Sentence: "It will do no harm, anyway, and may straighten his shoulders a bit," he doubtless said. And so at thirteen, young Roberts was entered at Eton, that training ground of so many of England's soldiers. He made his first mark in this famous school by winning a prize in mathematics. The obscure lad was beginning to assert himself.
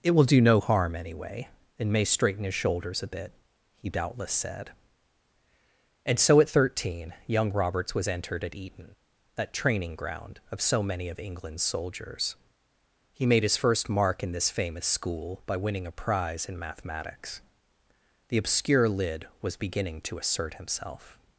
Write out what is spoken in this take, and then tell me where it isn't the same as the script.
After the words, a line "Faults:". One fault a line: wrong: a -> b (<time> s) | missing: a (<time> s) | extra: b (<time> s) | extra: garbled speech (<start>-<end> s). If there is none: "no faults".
"It will do no harm, anyway, and may straighten his shoulders a bit," he doubtless said. And so at thirteen, young Roberts was entered at Eton, that training ground of so many of England's soldiers. He made his first mark in this famous school by winning a prize in mathematics. The obscure lid was beginning to assert himself.
Faults:
wrong: lad -> lid (18.9 s)